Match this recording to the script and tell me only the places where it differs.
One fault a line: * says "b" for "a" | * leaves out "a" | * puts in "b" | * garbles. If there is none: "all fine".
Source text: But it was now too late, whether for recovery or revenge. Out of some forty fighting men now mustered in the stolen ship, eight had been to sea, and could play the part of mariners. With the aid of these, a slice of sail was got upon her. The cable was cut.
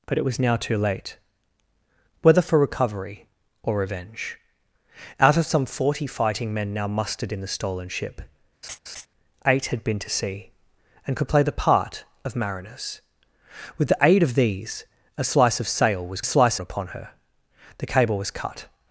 * says "slice" for "got"